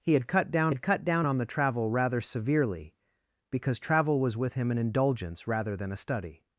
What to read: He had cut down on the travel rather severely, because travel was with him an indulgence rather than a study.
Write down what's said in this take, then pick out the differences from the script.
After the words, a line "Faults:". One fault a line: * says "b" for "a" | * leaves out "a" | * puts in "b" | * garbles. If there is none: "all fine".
He had cut down had cut down on the travel rather severely, because travel was with him an indulgence rather than a study.
Faults:
* puts in "had cut down"